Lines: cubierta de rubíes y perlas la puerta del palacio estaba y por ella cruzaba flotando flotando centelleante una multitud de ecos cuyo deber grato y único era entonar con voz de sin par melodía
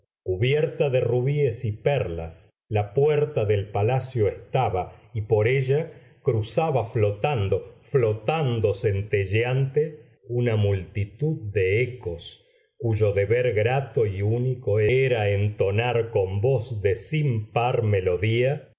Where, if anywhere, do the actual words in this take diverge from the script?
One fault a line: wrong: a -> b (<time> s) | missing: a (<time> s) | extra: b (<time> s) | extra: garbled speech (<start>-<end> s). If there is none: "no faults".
no faults